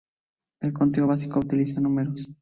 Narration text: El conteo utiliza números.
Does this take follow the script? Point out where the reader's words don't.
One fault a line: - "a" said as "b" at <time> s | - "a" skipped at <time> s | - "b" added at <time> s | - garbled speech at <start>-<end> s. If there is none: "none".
- "básico" added at 1.0 s